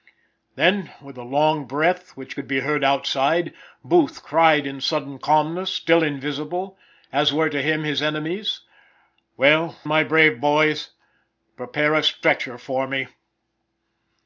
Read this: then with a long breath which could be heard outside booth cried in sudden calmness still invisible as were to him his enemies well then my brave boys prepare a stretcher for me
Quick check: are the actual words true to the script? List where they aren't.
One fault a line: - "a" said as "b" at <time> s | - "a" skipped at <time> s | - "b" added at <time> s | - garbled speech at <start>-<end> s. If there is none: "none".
- "then" skipped at 9.8 s